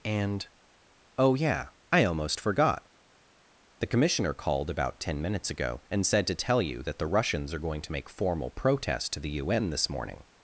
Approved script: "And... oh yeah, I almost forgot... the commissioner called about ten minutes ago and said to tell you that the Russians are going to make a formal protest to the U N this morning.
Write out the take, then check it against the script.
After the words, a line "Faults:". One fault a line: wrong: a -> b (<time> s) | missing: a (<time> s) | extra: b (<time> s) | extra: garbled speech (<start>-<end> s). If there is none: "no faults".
"And... oh yeah, I almost forgot... the commissioner called about ten minutes ago and said to tell you that the Russians are going to make formal protest to the U N this morning.
Faults:
missing: a (8.1 s)